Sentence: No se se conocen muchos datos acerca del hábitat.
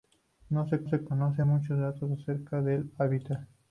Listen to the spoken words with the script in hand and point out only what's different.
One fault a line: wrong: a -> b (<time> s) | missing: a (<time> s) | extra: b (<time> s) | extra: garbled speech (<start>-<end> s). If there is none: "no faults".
no faults